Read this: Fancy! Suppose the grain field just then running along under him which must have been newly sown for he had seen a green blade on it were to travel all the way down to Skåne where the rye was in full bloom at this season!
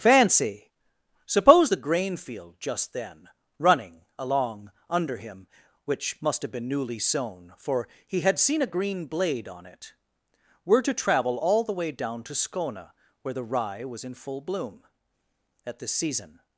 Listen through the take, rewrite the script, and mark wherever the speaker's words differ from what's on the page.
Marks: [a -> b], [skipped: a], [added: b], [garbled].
Fancy! Suppose the grain field just then running along under him which must have been newly sown for he had seen a green blade on it were to travel all the way down to Skåne where the rye was in full bloom at this season!